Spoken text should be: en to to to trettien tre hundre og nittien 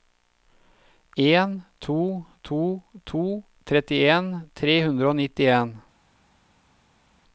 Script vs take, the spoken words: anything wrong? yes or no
no